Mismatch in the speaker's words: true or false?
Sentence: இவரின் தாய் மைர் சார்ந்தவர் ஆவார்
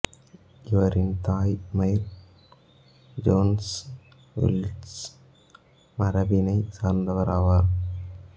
true